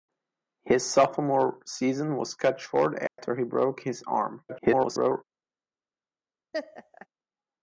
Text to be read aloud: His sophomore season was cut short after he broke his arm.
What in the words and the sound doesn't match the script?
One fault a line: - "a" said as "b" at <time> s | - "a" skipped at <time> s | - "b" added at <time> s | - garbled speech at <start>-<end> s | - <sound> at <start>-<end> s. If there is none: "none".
- dropout at 3.1-3.2 s
- garbled speech at 4.5-5.2 s
- laugh at 6.5-7.1 s